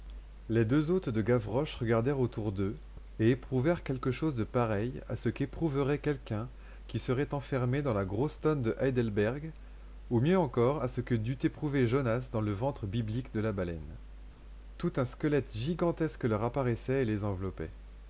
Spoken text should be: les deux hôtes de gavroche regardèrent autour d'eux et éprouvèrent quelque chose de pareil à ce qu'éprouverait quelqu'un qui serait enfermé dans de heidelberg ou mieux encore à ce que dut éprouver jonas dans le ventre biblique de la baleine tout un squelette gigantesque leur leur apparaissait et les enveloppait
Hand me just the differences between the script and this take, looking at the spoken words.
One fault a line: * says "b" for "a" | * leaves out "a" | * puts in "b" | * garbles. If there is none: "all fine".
* puts in "la grosse tonne"
* leaves out "leur"